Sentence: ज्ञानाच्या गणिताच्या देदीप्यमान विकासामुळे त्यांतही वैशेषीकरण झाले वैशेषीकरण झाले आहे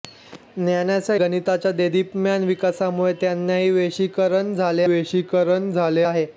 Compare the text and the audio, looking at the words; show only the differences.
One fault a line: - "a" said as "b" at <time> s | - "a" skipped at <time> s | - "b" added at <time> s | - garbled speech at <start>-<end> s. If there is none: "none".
none